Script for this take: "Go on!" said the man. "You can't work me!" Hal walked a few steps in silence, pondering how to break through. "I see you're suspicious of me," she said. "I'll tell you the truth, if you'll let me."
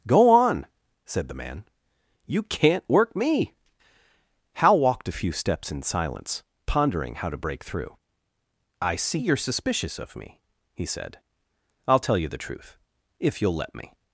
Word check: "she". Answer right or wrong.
wrong